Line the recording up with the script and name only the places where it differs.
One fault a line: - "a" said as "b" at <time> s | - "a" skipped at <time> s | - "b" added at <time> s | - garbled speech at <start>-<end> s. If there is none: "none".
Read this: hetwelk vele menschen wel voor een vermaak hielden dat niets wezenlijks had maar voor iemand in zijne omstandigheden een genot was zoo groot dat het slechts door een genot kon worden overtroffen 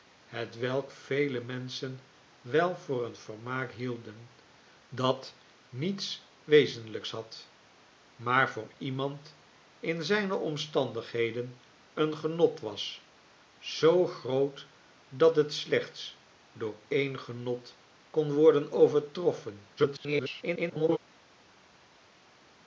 - garbled speech at 19.8-21.0 s